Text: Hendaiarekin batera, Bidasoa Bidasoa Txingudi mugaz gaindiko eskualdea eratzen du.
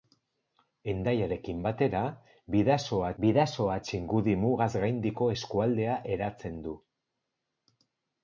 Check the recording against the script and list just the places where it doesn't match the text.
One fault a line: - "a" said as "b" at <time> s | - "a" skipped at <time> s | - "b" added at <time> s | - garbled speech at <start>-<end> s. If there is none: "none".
none